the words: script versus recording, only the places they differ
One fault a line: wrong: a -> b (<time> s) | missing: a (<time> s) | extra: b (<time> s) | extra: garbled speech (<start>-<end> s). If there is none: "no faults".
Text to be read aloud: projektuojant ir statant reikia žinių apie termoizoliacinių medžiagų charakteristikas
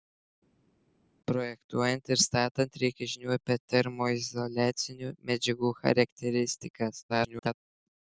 extra: garbled speech (7.1-7.5 s)